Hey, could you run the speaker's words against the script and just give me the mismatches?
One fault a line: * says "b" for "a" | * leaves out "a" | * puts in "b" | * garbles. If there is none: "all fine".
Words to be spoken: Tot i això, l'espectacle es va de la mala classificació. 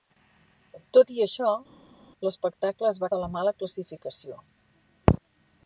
all fine